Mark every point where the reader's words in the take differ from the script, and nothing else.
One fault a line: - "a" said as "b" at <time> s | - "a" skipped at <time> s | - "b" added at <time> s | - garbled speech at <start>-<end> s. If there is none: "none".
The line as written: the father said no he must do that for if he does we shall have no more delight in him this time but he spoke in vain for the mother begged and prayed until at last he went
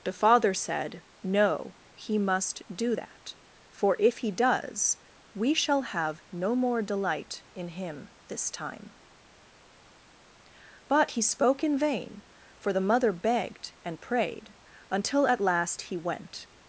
none